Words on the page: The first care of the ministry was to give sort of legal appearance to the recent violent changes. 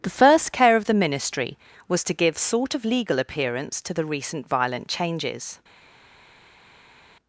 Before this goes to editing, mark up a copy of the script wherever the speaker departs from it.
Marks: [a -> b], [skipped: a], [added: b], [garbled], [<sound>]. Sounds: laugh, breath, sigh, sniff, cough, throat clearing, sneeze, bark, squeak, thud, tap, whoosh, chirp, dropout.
The first care of the ministry was to give sort of legal appearance to the recent violent changes.